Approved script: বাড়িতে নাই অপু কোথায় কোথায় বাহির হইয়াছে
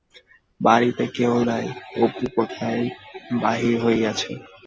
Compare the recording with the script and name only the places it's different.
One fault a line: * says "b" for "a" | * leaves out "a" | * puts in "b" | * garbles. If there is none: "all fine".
* puts in "কেহ"
* leaves out "কোথায়"